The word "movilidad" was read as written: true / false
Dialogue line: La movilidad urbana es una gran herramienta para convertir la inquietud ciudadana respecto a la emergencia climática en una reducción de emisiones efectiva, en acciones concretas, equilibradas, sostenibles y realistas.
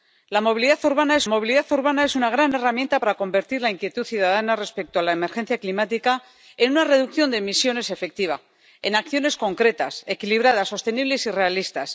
true